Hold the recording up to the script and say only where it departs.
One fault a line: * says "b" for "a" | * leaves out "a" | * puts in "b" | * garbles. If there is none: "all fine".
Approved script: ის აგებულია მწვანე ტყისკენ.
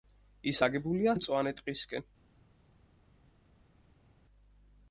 all fine